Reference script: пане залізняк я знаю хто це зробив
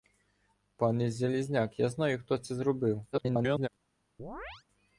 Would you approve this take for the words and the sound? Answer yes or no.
no